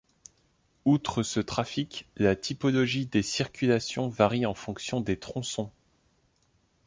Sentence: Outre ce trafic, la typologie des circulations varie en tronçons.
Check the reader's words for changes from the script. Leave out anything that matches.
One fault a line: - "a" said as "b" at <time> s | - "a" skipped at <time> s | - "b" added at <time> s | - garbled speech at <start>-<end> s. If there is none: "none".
- "fonction des" added at 4.5 s